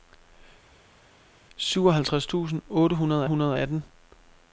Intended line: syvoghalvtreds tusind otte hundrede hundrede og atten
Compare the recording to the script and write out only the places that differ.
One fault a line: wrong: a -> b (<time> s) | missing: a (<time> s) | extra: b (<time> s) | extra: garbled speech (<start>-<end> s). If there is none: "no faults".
no faults